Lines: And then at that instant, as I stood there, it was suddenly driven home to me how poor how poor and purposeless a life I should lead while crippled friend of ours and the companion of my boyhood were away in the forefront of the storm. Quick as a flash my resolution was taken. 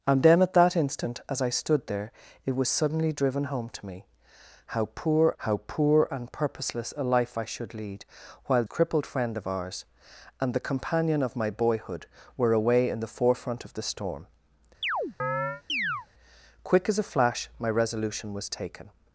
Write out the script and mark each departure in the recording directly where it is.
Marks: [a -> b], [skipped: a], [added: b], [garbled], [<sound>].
And then at that instant, as I stood there, it was suddenly driven home to me how poor how poor and purposeless a life I should lead while crippled friend of ours and the companion of my boyhood were away in the forefront of the storm. [chirp] Quick as a flash my resolution was taken.